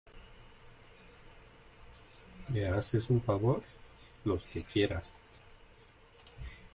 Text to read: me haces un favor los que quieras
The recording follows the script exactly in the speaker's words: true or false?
true